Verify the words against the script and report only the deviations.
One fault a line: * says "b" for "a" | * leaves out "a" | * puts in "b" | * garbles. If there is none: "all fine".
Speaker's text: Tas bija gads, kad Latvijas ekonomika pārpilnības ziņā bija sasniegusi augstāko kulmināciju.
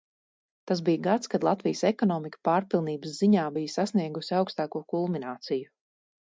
all fine